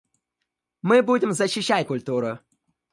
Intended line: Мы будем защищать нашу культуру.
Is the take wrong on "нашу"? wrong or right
wrong